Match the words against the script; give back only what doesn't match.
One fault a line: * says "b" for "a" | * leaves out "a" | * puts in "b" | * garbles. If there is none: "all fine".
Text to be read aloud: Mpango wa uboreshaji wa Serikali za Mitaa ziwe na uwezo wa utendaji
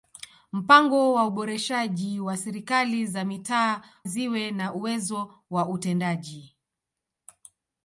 all fine